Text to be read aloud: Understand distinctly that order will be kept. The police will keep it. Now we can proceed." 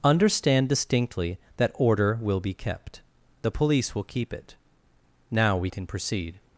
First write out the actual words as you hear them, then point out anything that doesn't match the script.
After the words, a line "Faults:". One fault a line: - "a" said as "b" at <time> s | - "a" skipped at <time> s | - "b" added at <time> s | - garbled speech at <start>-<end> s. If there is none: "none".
Understand distinctly that order will be kept. The police will keep it. Now we can proceed."
Faults:
none